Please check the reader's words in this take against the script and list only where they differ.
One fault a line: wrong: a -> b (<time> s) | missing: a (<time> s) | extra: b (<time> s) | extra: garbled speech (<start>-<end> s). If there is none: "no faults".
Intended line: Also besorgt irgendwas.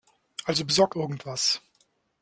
no faults